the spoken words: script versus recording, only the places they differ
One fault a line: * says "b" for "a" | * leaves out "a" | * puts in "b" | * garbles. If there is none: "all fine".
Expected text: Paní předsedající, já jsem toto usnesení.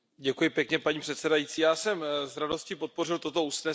* puts in "s radostí podpořil"